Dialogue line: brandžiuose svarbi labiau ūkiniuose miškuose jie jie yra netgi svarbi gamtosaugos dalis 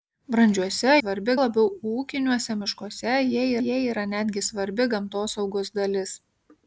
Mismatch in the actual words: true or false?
false